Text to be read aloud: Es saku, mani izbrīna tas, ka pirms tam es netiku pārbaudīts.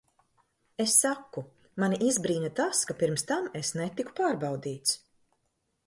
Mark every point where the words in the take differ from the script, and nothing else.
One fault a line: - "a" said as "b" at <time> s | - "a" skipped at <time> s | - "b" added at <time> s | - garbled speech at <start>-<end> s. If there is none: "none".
none